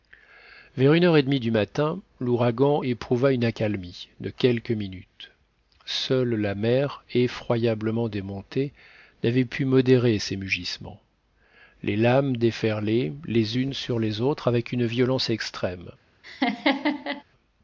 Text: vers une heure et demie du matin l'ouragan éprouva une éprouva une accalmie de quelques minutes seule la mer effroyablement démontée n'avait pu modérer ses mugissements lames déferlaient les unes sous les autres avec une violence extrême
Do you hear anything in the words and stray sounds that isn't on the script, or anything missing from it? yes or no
yes